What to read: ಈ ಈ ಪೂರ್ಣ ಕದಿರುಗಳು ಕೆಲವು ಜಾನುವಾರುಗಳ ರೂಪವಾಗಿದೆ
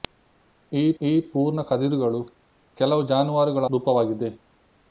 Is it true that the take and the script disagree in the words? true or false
false